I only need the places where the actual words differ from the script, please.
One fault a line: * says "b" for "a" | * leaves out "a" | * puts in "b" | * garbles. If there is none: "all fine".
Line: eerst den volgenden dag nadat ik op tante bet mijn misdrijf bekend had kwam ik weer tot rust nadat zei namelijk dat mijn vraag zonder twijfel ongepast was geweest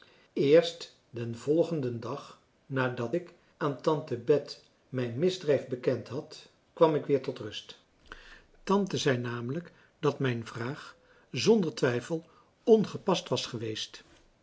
* says "aan" for "op"
* says "tante" for "nadat"